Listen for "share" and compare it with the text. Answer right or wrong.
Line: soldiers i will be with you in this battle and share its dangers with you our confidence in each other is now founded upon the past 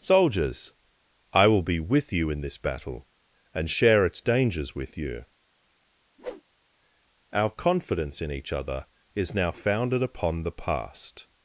right